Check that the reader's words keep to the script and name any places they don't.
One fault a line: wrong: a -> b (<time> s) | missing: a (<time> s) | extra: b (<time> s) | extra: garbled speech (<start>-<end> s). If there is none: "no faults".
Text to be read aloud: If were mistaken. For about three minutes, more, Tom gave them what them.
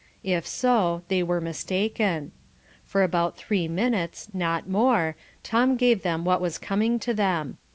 extra: so they (0.5 s)
extra: not (4.3 s)
extra: was coming to (6.4 s)